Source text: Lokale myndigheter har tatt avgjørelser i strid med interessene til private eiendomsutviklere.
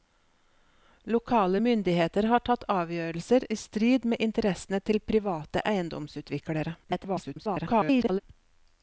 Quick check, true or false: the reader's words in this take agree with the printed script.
false